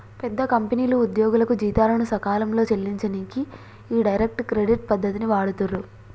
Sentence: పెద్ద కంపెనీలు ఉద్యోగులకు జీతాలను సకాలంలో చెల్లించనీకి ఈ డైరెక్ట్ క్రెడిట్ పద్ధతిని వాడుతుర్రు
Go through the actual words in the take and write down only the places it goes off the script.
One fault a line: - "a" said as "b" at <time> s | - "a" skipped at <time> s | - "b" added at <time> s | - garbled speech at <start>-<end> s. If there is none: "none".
none